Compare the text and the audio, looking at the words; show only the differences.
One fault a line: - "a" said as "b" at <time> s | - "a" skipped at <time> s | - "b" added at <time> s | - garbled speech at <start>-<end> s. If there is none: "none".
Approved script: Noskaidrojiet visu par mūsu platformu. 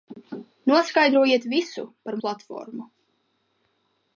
- "mūsu" skipped at 2.2 s